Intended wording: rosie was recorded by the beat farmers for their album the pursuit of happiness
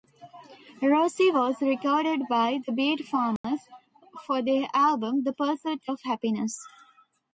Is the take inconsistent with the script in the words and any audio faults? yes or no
yes